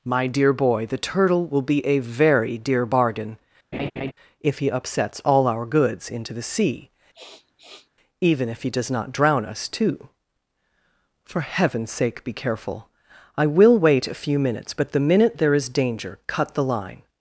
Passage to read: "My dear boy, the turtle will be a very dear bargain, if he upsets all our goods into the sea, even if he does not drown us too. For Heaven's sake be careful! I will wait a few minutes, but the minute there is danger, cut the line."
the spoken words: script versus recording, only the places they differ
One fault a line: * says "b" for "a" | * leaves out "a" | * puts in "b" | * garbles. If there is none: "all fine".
all fine